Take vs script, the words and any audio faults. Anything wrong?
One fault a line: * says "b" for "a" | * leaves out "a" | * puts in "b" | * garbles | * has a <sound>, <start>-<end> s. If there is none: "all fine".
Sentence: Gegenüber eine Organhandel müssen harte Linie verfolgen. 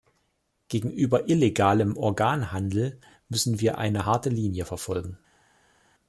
* says "illegalem" for "eine"
* puts in "wir eine"